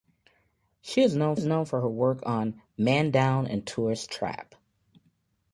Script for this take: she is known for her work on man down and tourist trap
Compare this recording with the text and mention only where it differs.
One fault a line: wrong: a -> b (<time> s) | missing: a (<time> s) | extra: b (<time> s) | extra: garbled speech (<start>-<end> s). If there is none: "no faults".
extra: is known (1.3 s)